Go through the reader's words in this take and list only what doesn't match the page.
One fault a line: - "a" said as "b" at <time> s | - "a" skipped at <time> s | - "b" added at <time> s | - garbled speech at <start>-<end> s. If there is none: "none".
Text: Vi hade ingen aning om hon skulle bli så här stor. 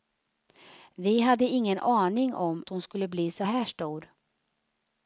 none